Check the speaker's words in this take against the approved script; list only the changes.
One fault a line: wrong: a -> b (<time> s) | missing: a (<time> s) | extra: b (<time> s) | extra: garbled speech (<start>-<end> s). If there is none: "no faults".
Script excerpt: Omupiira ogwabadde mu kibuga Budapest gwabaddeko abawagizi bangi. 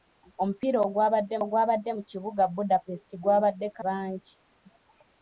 extra: ogwabadde (1.4 s)
missing: abawagizi (3.8 s)